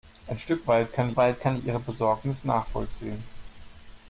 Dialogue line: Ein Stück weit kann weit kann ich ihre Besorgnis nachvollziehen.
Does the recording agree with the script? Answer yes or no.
yes